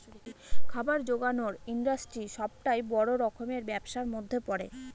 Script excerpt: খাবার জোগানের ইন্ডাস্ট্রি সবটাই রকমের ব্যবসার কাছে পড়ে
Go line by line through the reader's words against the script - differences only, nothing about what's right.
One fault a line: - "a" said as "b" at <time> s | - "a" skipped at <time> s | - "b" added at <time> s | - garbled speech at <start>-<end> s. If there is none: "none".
- "বড়" added at 2.9 s
- "কাছে" said as "মধ্যে" at 4.1 s